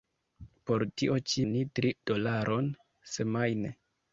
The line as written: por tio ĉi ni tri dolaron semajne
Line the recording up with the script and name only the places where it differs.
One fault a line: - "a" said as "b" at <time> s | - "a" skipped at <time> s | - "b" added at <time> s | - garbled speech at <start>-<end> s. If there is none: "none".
none